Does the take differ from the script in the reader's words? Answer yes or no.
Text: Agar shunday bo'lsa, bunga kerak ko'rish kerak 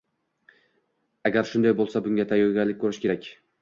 yes